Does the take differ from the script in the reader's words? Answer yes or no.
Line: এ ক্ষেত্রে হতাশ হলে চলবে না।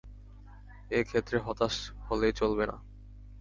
no